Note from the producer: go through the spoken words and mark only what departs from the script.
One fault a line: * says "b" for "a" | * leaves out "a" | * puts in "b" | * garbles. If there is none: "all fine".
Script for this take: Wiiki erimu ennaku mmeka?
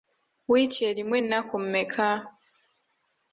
all fine